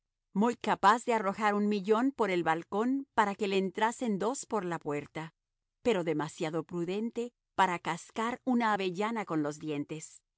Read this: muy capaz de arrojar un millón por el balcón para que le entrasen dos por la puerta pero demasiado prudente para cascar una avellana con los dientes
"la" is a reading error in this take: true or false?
false